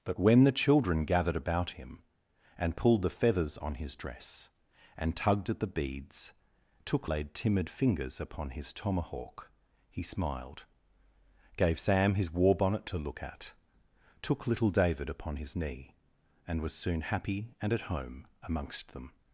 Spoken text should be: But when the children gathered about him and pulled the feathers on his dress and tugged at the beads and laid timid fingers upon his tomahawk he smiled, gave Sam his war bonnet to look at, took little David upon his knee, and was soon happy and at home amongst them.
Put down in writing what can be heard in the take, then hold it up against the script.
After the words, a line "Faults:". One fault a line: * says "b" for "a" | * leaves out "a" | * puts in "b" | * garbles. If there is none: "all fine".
But when the children gathered about him and pulled the feathers on his dress and tugged at the beads took laid timid fingers upon his tomahawk he smiled, gave Sam his war bonnet to look at, took little David upon his knee, and was soon happy and at home amongst them.
Faults:
* says "took" for "and"